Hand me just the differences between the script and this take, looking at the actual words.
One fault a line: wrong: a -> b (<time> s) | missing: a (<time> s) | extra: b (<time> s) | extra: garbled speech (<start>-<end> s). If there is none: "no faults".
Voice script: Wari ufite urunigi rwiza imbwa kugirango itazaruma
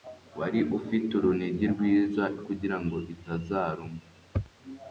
missing: imbwa (2.2 s)